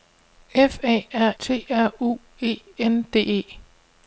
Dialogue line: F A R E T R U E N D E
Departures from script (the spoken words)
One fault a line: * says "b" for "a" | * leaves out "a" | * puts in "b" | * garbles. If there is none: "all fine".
* leaves out "E"